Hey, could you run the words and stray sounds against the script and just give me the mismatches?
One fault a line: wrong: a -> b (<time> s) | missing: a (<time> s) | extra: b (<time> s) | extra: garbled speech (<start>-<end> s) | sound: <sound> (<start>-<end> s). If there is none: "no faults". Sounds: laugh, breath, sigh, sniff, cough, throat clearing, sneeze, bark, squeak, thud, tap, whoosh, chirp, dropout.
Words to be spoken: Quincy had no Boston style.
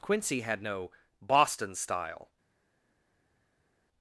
no faults